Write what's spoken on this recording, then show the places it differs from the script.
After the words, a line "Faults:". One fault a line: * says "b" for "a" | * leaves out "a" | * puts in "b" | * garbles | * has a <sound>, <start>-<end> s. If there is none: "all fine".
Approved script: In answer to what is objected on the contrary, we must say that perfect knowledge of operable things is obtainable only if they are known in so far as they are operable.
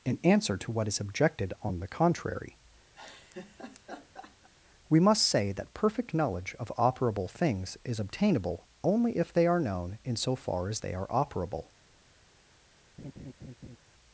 In answer to what is objected on the contrary, we must say that perfect knowledge of operable things is obtainable only if they are known in so far as they are operable.
Faults:
* has a laugh, 2.9-4.5 s
* has a laugh, 13.0-13.8 s